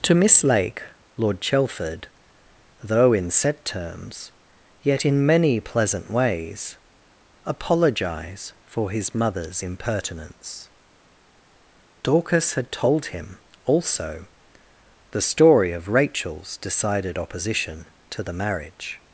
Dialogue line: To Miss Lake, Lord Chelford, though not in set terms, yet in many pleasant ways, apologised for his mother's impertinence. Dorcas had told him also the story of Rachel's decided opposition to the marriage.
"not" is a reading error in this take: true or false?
true